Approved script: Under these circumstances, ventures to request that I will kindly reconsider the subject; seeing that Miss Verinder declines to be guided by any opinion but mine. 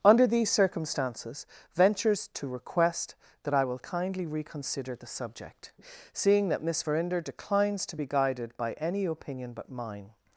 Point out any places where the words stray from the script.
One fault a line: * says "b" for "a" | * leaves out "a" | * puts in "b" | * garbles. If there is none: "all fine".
all fine